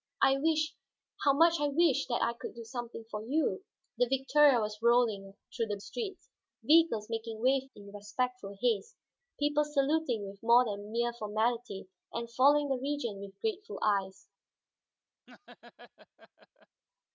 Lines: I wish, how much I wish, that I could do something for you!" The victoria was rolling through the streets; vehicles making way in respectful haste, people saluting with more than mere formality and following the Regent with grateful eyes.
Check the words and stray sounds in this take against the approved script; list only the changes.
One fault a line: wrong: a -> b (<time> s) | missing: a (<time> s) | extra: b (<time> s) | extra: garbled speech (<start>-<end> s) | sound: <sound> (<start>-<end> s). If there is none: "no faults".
sound: laugh (15.3-16.8 s)